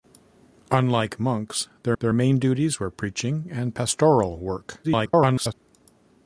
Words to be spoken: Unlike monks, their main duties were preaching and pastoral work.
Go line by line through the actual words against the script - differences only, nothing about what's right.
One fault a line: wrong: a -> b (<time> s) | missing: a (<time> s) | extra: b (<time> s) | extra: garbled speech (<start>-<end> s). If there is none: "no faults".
extra: their (2.0 s)
extra: garbled speech (4.8-5.5 s)